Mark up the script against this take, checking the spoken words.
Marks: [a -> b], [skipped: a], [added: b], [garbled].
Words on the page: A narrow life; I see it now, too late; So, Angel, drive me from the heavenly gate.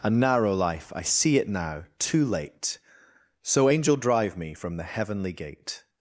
A narrow life; I see it now, too late; So, Angel, drive me from the heavenly gate.